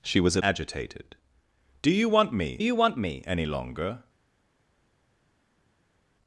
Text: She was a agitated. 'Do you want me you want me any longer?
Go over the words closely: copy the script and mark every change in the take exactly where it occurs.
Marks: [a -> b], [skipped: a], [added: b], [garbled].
She was a agitated. 'Do you want me you want me any longer?